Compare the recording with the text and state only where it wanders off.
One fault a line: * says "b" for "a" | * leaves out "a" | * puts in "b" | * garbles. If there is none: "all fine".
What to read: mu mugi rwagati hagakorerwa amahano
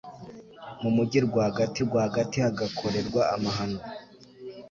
* puts in "rwagati"